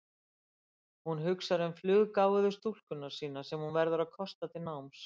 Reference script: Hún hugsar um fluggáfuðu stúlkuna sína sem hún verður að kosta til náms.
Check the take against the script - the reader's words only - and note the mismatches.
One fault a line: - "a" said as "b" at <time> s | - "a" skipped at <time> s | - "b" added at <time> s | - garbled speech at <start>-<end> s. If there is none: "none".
none